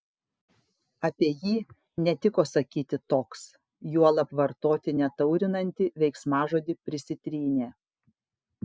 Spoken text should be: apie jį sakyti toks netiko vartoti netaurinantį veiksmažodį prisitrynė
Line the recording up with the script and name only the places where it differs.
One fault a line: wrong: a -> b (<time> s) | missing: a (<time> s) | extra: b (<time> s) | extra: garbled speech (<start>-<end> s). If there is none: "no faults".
extra: netiko (2.1 s)
wrong: netiko -> juolab (4.0 s)